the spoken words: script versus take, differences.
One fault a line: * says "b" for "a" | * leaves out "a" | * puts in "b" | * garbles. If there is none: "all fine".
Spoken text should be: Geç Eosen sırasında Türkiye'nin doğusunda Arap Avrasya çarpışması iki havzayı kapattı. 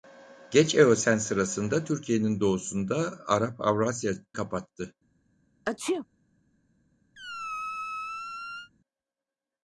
* leaves out "çarpışması iki havzayı"